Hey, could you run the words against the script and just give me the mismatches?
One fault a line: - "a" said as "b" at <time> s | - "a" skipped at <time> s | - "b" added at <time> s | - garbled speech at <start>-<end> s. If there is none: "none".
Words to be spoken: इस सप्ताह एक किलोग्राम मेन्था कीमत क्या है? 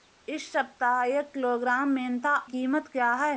none